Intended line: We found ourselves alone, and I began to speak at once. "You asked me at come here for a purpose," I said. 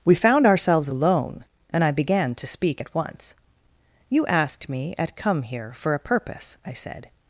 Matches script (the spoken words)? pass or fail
pass